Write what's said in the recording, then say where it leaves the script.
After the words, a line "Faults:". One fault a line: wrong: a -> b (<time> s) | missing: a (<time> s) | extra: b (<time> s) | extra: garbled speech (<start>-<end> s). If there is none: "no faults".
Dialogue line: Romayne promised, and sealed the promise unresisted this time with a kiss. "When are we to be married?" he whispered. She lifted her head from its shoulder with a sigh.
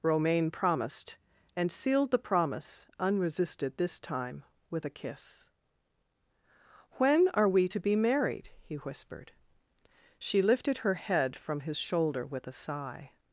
Romayne promised, and sealed the promise unresisted this time with a kiss. "When are we to be married?" he whispered. She lifted her head from his shoulder with a sigh.
Faults:
wrong: its -> his (11.6 s)